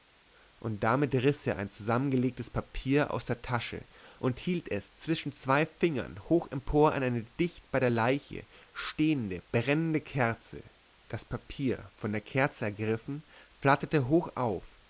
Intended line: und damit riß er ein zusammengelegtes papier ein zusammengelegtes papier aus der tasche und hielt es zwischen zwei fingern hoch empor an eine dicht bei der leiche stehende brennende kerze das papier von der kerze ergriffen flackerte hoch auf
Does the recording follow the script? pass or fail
fail